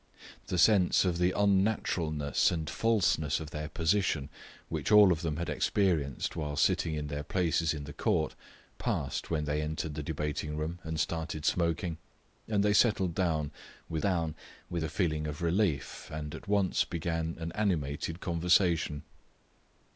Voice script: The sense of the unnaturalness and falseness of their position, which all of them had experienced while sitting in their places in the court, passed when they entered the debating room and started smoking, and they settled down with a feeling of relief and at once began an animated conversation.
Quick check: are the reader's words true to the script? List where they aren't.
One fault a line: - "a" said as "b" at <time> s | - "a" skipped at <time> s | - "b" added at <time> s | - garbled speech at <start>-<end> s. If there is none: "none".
- "down with" added at 14.0 s